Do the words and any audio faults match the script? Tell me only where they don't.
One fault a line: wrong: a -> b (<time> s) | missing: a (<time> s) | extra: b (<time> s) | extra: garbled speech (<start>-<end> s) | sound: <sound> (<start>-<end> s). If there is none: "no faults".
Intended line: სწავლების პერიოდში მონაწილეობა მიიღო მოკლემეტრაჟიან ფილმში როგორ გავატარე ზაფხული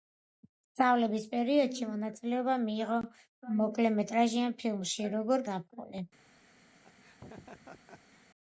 missing: გავატარე (5.5 s)
sound: laugh (6.8-8.3 s)